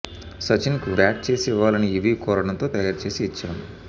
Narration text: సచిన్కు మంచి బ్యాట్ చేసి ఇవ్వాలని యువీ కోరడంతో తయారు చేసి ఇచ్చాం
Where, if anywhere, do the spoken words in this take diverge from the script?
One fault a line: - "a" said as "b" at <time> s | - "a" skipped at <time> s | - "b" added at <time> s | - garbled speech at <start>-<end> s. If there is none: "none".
- "మంచి" skipped at 0.9 s